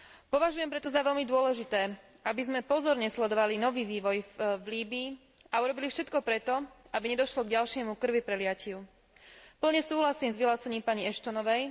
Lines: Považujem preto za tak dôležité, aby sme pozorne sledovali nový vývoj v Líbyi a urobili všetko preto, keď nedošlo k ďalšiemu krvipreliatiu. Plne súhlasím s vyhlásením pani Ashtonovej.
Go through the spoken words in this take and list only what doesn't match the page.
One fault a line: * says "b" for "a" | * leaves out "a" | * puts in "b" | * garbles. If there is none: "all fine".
* says "veľmi" for "tak"
* says "aby" for "keď"